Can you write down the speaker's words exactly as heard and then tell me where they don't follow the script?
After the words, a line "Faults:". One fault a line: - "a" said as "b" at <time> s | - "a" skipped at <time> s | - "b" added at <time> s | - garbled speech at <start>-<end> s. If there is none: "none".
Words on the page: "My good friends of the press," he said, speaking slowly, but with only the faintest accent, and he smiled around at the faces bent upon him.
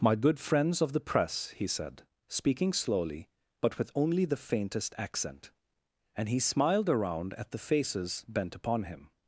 "My good friends of the press," he said, speaking slowly, but with only the faintest accent, and he smiled around at the faces bent upon him.
Faults:
none